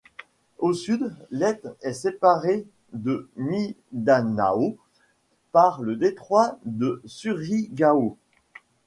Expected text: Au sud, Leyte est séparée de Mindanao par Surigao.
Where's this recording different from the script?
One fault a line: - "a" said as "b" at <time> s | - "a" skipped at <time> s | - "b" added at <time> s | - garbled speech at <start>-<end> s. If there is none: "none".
- "le détroit de" added at 5.8 s